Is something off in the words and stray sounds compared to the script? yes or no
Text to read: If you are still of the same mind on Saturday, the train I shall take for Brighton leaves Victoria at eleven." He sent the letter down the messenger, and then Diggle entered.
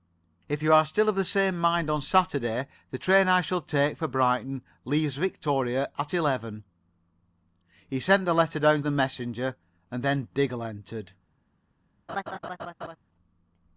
yes